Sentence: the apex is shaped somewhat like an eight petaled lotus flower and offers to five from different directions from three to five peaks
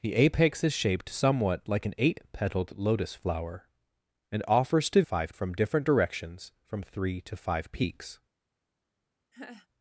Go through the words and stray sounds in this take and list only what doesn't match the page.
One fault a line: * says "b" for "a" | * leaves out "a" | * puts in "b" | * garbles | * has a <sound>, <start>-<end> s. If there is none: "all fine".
* has a laugh, 9.3-9.7 s